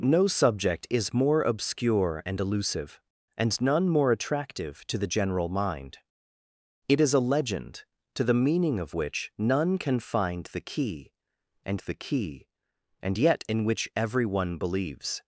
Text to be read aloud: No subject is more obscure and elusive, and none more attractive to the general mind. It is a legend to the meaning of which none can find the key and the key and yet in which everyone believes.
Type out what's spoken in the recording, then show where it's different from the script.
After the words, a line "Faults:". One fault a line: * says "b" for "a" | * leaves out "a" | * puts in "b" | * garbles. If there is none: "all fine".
No subject is more obscure and elusive, and none more attractive to the general mind. It is a legend to the meaning of which none can find the key and the key and yet in which everyone believes.
Faults:
all fine